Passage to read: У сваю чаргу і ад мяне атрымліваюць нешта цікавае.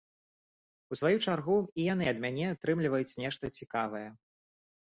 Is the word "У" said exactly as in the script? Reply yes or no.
yes